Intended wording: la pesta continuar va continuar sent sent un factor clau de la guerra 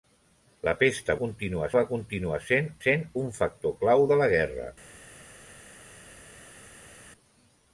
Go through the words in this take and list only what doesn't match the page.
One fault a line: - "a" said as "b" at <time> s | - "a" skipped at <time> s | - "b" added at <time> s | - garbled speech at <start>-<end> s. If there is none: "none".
none